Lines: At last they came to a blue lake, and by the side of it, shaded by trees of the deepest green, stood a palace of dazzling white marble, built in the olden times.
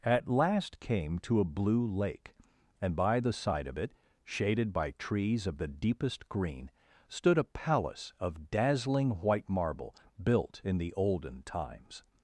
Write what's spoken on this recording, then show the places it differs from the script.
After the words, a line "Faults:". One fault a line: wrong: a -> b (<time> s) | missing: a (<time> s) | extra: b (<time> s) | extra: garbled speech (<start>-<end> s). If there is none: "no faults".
At last came to a blue lake, and by the side of it, shaded by trees of the deepest green, stood a palace of dazzling white marble, built in the olden times.
Faults:
missing: they (0.8 s)